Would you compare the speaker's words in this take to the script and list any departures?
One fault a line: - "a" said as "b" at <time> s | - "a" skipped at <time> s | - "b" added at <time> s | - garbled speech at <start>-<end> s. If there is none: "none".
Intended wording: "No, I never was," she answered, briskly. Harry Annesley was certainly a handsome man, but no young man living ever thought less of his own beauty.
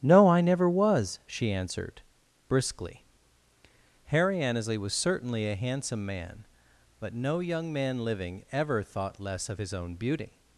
none